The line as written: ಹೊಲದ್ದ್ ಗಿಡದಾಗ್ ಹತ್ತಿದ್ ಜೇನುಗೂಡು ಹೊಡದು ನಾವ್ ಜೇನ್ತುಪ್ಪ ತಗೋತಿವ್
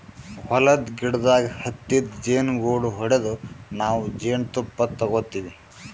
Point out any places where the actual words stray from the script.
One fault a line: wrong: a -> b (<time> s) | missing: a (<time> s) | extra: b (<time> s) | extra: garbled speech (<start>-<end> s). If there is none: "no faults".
no faults